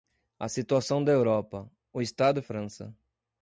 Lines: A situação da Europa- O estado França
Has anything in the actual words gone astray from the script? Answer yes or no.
no